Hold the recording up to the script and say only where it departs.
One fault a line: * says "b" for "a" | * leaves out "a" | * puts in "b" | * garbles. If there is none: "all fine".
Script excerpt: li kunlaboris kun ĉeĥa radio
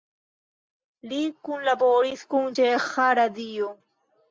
all fine